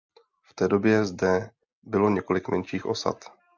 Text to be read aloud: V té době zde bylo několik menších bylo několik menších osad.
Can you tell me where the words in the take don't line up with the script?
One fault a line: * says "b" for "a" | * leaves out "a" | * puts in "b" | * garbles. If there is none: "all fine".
* leaves out "bylo několik menších"